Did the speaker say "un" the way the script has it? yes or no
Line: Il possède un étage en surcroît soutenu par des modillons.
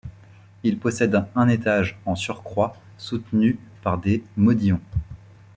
yes